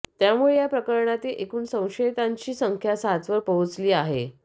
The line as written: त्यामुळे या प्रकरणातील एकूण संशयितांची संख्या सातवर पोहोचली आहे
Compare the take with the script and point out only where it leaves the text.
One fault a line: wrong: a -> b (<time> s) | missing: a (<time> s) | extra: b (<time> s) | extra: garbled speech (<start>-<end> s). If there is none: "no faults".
no faults